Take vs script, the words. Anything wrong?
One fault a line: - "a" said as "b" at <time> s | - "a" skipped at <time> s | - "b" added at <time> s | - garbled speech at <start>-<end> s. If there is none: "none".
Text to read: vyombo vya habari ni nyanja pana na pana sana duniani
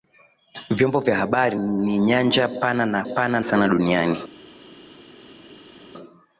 none